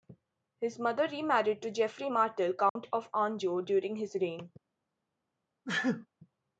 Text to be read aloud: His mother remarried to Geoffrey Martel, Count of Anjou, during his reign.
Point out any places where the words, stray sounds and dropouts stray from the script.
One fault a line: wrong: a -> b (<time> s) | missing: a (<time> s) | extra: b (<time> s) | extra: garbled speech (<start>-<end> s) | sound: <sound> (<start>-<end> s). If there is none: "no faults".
sound: dropout (2.7-2.8 s)
sound: sneeze (5.6-6.1 s)